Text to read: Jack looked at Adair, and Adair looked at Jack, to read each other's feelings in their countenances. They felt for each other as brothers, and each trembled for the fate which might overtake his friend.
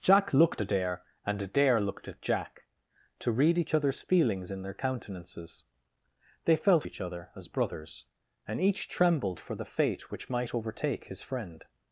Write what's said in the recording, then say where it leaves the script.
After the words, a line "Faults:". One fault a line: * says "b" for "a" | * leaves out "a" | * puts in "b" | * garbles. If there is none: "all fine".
Jack looked Adair, and Adair looked at Jack, to read each other's feelings in their countenances. They felt each other as brothers, and each trembled for the fate which might overtake his friend.
Faults:
* leaves out "at"
* leaves out "for"